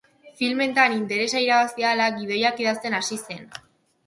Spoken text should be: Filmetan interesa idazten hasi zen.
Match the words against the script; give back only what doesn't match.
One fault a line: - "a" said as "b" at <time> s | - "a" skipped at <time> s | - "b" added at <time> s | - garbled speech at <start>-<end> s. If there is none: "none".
- "irabazi ahala gidoiak" added at 1.4 s